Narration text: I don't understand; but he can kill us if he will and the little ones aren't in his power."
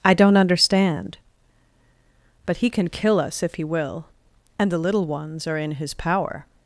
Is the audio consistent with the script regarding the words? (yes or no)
no